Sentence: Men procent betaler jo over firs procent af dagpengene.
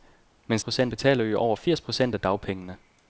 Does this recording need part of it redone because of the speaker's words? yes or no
no